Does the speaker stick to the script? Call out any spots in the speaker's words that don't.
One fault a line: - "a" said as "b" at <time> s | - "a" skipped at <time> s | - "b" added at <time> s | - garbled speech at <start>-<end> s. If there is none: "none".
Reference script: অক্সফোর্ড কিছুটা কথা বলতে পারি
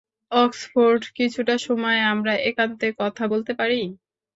- "সময় আমরা একান্তে" added at 1.6 s